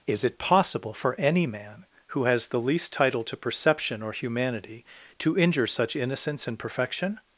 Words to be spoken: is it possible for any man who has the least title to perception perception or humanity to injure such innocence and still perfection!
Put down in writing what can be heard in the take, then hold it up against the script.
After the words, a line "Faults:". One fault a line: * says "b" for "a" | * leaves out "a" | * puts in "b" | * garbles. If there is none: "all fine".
is it possible for any man who has the least title to perception or humanity to injure such innocence and perfection!
Faults:
* leaves out "perception"
* leaves out "still"